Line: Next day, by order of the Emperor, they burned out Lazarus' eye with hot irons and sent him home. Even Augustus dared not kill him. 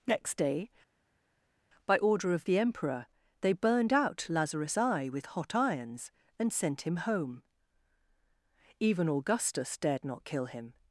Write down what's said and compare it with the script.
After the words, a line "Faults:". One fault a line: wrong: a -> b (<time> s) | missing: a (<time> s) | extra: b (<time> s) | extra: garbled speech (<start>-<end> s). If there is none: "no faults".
Next day, by order of the Emperor, they burned out Lazarus' eye with hot irons and sent him home. Even Augustus dared not kill him.
Faults:
no faults